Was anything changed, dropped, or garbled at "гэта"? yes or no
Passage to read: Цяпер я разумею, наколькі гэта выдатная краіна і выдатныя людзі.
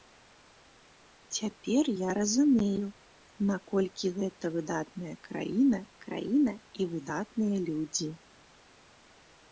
no